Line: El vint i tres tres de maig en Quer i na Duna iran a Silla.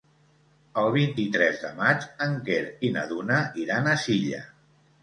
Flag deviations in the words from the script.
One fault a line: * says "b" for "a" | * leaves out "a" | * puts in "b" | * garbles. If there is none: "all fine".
* leaves out "tres"